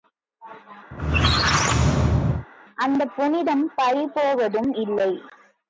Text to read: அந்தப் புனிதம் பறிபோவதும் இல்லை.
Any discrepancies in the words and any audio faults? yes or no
yes